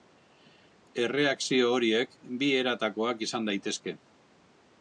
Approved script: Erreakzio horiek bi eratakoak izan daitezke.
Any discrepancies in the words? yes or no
no